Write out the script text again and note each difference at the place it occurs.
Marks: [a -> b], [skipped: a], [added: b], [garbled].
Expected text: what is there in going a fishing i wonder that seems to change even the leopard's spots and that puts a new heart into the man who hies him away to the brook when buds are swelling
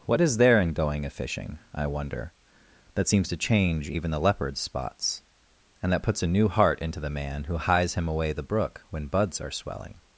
what is there in going a fishing i wonder that seems to change even the leopard's spots and that puts a new heart into the man who hies him away [skipped: to] the brook when buds are swelling